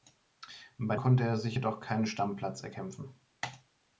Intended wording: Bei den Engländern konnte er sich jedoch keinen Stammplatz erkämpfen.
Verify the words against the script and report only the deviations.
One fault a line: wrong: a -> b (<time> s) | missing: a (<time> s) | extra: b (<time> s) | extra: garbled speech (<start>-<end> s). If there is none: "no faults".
missing: den Engländern (0.9 s)